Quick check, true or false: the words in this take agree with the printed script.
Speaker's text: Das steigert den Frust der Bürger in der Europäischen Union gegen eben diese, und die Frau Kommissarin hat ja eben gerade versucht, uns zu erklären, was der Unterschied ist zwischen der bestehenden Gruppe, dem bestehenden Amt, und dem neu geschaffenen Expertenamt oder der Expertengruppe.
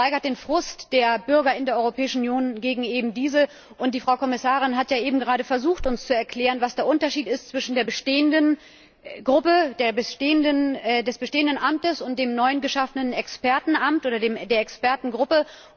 true